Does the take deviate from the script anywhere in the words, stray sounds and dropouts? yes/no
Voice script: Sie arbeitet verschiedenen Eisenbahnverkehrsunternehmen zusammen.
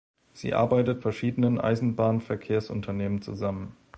no